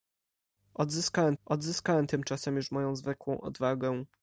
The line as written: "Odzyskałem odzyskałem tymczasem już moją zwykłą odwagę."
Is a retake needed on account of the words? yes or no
no